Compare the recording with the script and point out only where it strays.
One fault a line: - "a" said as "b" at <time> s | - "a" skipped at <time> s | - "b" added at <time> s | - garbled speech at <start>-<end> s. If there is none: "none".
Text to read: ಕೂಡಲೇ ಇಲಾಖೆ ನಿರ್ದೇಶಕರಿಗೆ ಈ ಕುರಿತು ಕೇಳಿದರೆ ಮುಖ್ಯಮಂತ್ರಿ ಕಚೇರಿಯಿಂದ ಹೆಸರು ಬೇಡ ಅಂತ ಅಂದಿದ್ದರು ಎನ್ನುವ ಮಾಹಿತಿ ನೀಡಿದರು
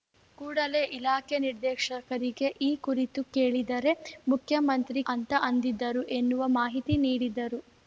- "ಕಚೇರಿಯಿಂದ ಹೆಸರು ಬೇಡ" skipped at 5.0 s